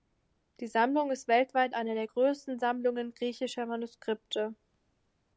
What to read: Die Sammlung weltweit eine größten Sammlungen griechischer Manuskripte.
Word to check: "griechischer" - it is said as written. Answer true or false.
true